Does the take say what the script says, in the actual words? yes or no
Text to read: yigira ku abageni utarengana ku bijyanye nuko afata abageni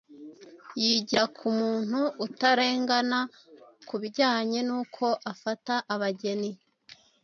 no